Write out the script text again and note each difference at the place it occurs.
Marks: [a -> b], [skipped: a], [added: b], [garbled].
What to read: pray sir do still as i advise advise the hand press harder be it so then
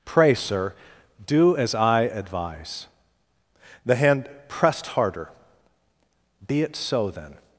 pray sir do [skipped: still] as i advise [skipped: advise] the hand [press -> pressed] harder be it so then